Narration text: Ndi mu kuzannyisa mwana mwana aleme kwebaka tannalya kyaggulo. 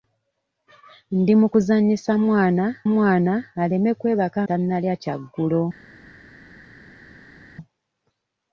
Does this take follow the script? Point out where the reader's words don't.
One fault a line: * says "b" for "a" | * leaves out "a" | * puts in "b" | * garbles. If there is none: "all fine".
all fine